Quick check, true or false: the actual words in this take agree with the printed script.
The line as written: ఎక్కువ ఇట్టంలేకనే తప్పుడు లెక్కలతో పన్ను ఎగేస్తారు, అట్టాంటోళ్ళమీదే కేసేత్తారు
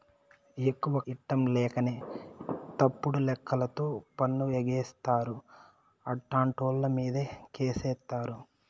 true